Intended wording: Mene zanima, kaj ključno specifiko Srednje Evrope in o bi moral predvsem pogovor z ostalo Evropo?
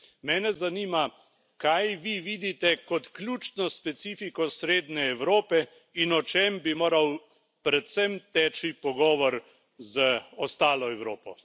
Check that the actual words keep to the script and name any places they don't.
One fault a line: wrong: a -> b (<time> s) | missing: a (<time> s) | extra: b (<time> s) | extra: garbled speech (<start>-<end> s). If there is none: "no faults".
extra: vi vidite kot (2.0 s)
extra: čem (6.2 s)
extra: teči (8.3 s)